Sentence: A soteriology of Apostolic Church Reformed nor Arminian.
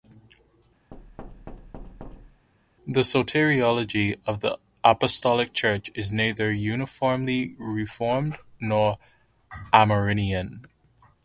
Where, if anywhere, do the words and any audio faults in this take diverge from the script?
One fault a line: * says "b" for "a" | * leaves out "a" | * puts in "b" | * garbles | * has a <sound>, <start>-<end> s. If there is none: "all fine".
* has a thud, 0.9-2.5 s
* says "The" for "A"
* puts in "the"
* puts in "is neither uniformly"